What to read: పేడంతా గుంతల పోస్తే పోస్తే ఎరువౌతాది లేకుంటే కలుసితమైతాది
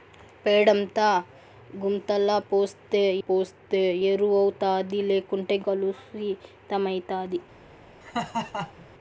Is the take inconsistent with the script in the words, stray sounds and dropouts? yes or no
yes